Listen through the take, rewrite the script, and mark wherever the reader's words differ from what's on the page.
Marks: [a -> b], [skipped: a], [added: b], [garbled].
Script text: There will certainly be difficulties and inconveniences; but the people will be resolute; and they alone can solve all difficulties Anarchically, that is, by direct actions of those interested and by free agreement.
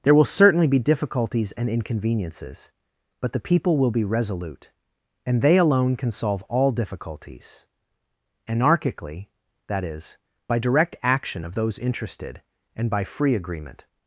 There will certainly be difficulties and inconveniences; but the people will be resolute; and they alone can solve all difficulties Anarchically, that is, by direct [actions -> action] of those interested and by free agreement.